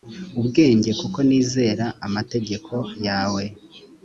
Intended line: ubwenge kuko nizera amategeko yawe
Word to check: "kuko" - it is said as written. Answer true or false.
true